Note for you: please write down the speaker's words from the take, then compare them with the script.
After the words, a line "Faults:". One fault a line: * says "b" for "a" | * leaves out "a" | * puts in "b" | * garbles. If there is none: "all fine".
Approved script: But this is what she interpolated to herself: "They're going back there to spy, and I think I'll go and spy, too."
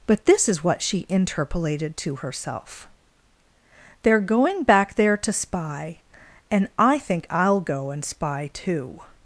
But this is what she interpolated to herself: "They're going back there to spy, and I think I'll go and spy, too."
Faults:
all fine